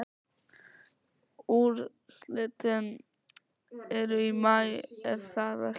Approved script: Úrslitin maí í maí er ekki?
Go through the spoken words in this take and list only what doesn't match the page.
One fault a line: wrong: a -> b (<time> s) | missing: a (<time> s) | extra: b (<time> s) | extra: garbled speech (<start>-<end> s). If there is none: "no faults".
wrong: maí -> eru (4.0 s)
extra: það (5.3 s)